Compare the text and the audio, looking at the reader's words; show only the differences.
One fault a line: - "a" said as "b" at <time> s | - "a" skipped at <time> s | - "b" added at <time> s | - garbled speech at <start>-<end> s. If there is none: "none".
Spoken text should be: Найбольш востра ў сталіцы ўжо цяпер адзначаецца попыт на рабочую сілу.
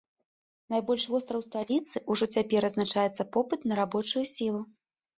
none